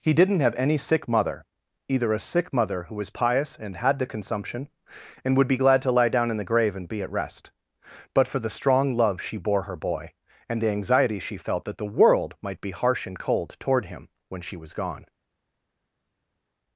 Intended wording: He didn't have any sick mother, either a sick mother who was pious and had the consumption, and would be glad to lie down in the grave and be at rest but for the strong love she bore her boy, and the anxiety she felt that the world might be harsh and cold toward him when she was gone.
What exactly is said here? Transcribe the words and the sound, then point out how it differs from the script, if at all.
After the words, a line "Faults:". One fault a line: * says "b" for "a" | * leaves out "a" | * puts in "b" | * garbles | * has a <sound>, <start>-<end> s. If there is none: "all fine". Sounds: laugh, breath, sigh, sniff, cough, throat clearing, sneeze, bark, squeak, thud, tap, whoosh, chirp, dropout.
He didn't have any sick mother, either a sick mother who was pious and had the consumption, and would be glad to lie down in the grave and be at rest but for the strong love she bore her boy, and the anxiety she felt that the world might be harsh and cold toward him when she was gone.
Faults:
all fine